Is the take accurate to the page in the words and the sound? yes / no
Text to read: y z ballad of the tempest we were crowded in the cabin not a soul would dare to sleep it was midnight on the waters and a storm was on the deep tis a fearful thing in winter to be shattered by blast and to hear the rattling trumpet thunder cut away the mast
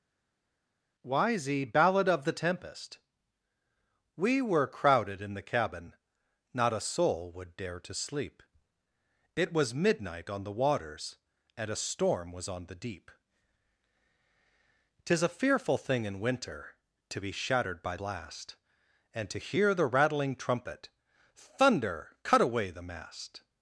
yes